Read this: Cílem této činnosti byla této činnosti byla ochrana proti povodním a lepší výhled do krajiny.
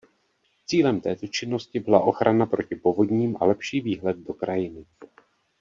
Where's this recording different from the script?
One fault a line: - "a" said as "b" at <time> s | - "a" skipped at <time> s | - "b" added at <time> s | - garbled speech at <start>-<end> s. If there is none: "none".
- "této činnosti byla" skipped at 2.0 s